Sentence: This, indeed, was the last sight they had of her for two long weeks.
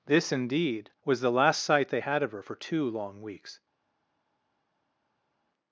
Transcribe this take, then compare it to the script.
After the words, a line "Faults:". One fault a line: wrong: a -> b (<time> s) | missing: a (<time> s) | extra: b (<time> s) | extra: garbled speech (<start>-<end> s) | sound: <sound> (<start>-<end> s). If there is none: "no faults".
This, indeed, was the last sight they had of her for two long weeks.
Faults:
no faults